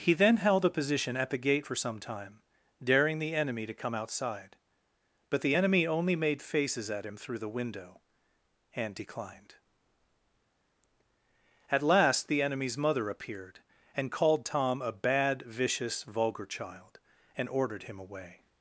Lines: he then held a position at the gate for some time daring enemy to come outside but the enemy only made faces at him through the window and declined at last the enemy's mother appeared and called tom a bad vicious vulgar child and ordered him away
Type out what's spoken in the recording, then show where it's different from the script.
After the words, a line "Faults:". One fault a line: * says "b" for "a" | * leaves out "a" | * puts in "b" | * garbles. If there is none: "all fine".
he then held a position at the gate for some time daring the enemy to come outside but the enemy only made faces at him through the window and declined at last the enemy's mother appeared and called tom a bad vicious vulgar child and ordered him away
Faults:
* puts in "the"